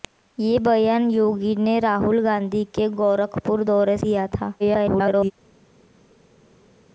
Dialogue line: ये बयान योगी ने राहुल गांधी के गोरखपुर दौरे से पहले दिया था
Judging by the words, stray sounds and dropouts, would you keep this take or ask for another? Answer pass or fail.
fail